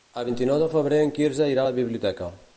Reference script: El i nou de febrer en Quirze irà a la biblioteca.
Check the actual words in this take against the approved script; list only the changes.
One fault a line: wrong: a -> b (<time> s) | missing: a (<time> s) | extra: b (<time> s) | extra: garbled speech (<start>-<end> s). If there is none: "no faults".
extra: vint (0.3 s)